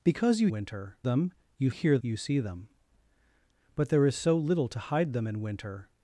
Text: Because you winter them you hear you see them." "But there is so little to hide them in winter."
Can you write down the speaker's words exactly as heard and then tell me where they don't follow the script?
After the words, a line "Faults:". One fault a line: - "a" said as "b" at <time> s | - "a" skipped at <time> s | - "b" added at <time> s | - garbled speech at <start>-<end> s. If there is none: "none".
Because you winter them you hear you see them." "But there is so little to hide them in winter."
Faults:
none